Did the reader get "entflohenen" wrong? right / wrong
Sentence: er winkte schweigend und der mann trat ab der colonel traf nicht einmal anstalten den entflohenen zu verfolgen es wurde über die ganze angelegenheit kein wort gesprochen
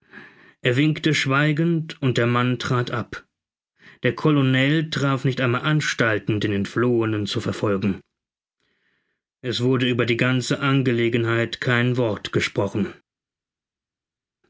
right